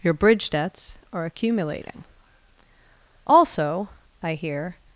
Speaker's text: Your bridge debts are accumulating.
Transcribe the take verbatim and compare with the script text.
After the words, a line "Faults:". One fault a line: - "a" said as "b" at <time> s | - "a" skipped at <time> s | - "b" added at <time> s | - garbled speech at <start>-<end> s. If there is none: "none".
Your bridge debts are accumulating. Also, I hear
Faults:
- "Also I hear" added at 3.3 s